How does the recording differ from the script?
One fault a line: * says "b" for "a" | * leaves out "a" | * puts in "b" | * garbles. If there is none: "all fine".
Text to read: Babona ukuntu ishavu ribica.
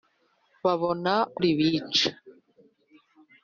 * leaves out "ukuntu ishavu"